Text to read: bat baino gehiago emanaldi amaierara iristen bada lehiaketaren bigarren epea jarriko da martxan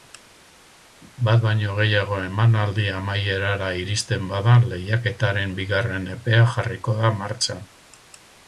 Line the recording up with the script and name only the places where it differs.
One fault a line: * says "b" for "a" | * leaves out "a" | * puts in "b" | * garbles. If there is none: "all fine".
all fine